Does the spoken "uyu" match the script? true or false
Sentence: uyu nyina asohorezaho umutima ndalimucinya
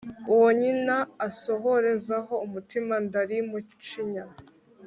false